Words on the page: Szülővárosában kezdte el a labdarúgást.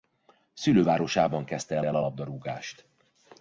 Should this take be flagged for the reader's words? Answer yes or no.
yes